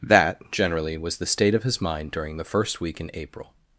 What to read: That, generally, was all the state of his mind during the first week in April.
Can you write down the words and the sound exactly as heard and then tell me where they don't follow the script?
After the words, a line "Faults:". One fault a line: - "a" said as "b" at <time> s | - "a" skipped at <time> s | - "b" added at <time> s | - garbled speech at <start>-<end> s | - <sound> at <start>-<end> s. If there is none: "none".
That, generally, was the state of his mind during the first week in April.
Faults:
- "all" skipped at 1.2 s